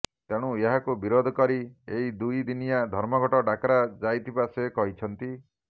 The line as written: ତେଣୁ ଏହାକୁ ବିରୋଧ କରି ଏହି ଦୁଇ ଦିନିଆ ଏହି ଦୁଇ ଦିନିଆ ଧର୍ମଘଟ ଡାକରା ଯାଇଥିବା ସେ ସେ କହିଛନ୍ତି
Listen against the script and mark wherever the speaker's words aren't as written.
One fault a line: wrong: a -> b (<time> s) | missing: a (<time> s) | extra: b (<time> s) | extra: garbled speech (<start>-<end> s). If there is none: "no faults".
missing: ଏହି ଦୁଇ ଦିନିଆ (2.8 s)
missing: ସେ (4.7 s)